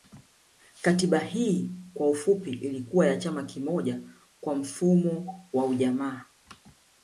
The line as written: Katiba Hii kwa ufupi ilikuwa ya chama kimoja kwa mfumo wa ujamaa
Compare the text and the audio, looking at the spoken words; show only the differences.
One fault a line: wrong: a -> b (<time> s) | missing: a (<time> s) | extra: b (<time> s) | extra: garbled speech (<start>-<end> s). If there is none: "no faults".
no faults